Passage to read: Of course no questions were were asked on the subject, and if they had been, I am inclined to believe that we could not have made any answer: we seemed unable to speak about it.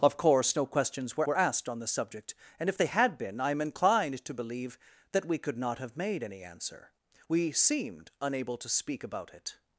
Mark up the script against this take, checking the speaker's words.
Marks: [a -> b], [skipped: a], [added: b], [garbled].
Of course no questions were were asked on the subject, and if they had been, I am inclined to believe that we could not have made any answer: we seemed unable to speak about it.